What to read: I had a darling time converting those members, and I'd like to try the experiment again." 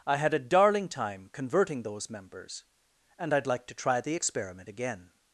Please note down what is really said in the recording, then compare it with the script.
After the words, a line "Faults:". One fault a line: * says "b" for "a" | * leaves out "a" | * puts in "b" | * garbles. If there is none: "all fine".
I had a darling time converting those members, and I'd like to try the experiment again."
Faults:
all fine